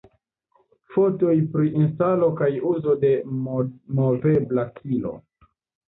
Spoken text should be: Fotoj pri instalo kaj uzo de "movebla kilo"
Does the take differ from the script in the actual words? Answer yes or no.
no